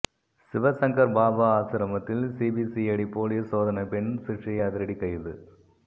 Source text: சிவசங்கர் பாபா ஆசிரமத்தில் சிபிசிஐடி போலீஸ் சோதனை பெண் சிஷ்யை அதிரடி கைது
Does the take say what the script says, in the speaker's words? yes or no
yes